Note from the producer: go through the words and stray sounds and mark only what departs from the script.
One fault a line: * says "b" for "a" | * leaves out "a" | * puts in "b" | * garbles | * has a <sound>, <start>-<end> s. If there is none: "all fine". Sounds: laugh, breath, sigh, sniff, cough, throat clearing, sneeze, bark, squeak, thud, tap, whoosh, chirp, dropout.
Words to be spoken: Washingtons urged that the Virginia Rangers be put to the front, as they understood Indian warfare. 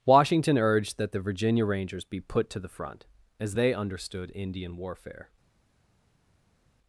* says "Washington" for "Washingtons"